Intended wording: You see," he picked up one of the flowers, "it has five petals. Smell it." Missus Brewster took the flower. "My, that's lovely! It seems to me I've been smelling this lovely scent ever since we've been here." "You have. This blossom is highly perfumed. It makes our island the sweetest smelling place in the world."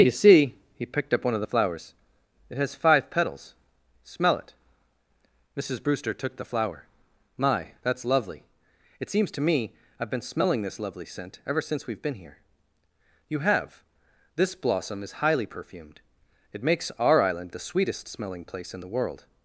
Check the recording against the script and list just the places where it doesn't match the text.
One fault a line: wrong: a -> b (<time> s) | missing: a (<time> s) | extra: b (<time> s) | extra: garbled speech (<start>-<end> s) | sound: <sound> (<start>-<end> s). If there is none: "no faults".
no faults